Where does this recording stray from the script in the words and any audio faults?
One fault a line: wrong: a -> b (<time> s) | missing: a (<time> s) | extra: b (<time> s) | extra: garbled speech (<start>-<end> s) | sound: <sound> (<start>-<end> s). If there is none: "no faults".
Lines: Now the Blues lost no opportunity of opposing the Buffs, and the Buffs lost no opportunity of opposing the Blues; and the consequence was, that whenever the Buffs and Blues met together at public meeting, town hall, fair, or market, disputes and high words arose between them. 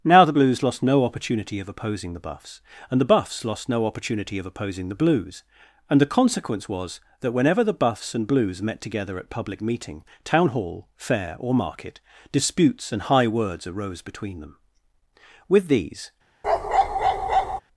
extra: With these (15.5 s)
sound: bark (16.4-17.6 s)